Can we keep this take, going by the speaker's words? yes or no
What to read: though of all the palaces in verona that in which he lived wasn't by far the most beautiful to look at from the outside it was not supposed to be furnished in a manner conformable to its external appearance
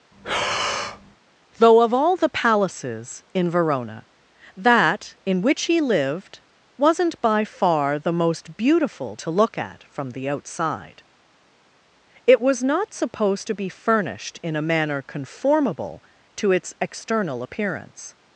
yes